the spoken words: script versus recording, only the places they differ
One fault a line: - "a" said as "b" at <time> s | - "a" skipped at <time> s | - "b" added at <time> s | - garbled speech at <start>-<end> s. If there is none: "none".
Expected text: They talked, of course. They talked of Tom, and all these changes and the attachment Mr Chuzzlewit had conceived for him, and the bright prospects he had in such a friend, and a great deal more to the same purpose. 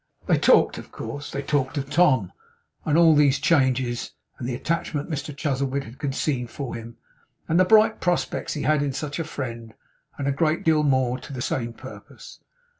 none